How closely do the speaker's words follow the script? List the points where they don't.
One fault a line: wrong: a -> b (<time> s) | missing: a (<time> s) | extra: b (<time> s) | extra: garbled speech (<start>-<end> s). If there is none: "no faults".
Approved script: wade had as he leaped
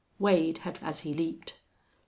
no faults